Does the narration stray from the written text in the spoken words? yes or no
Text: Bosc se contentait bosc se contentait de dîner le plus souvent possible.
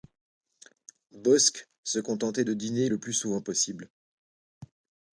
yes